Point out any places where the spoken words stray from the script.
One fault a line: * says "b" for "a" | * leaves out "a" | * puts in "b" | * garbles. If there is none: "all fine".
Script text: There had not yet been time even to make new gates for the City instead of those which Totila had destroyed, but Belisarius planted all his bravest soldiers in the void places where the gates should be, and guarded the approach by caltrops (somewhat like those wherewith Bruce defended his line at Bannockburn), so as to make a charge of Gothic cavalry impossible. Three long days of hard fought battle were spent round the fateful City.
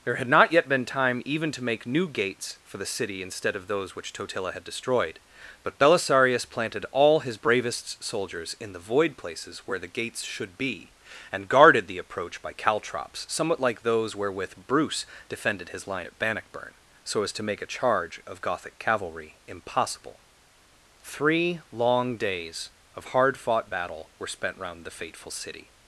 all fine